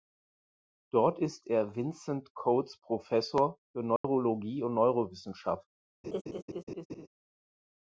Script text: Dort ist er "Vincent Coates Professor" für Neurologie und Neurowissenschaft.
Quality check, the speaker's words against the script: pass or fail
pass